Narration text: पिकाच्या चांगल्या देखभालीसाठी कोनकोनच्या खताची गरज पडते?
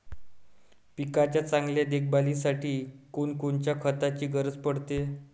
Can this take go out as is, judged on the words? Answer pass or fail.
pass